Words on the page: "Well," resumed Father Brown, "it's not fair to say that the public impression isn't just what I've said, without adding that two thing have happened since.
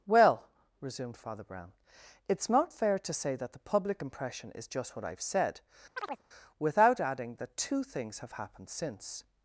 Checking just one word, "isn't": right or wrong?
wrong